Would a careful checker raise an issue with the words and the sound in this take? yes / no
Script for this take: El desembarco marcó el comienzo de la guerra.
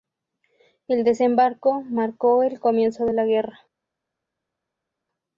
no